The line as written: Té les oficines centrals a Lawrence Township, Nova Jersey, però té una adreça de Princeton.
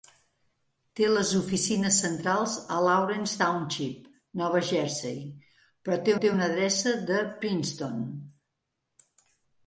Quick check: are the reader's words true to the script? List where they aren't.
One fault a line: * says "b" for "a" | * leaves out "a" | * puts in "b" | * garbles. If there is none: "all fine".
* puts in "té"